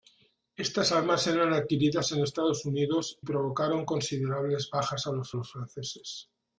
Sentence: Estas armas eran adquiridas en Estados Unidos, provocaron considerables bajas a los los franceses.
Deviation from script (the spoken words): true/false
false